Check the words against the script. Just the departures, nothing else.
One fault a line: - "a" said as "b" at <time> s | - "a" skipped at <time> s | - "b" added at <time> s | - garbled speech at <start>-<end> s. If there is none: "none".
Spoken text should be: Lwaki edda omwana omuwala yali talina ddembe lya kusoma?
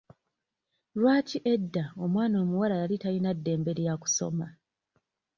none